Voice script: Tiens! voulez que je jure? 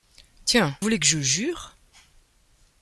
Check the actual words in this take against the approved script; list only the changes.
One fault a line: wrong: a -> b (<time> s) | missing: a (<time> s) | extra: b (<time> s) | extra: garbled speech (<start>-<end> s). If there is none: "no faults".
no faults